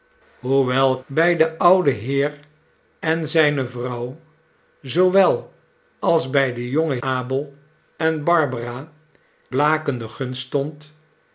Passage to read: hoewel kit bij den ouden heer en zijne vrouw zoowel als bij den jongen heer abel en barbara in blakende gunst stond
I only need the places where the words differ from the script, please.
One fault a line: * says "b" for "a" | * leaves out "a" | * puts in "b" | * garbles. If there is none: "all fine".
* leaves out "kit"
* leaves out "heer"
* leaves out "in"